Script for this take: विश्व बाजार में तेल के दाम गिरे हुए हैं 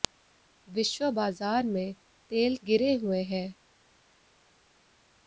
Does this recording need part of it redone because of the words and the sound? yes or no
yes